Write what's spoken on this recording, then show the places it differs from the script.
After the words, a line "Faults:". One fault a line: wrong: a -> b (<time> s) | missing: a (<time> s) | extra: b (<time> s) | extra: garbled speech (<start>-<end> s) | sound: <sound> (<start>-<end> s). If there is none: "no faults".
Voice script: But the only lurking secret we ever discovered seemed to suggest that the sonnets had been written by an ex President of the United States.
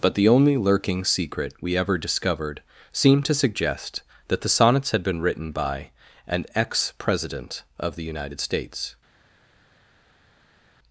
But the only lurking secret we ever discovered seemed to suggest that the sonnets had been written by an ex President of the United States.
Faults:
no faults